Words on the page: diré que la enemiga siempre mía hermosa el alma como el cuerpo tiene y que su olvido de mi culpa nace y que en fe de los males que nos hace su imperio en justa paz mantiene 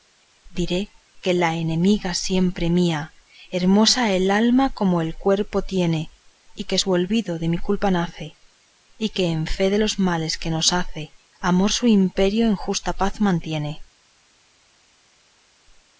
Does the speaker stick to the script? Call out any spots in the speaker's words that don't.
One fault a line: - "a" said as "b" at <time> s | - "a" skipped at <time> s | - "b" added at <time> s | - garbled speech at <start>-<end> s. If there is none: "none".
- "amor" added at 11.4 s